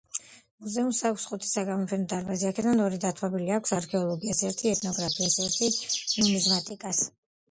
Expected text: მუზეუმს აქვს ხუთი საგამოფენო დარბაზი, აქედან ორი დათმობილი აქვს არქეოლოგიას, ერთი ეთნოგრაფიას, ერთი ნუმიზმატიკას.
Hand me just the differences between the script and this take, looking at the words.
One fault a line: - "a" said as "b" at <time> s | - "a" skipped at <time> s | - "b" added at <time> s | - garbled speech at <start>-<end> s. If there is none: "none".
none